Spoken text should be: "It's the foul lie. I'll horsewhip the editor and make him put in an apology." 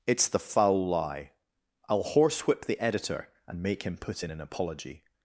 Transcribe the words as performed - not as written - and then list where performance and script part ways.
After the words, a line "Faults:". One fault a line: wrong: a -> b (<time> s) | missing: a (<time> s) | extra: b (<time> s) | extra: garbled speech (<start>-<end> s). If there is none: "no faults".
"It's the foul lie. I'll horsewhip the editor and make him put in an apology."
Faults:
no faults